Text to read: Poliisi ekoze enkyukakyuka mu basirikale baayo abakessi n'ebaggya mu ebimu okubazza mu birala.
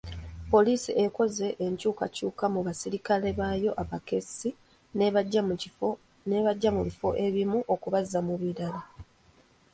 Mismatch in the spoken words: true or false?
true